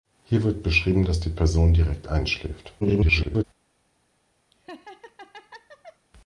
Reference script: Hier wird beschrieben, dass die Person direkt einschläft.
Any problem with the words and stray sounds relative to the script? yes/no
yes